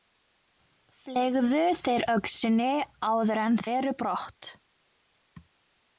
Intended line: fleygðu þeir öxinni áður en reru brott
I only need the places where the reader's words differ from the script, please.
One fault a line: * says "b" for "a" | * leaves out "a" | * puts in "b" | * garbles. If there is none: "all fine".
all fine